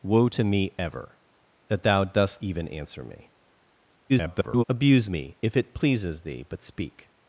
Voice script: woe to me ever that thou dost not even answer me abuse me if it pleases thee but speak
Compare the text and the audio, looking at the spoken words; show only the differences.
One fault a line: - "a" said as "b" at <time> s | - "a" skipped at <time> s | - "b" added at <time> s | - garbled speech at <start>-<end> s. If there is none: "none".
- "not" skipped at 2.4 s
- garbled speech at 4.1-4.6 s